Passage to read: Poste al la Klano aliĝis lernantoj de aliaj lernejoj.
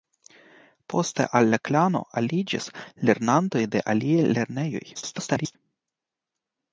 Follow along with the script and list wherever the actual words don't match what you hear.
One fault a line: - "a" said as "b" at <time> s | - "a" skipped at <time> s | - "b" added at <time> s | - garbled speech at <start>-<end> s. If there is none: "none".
- garbled speech at 4.9-5.6 s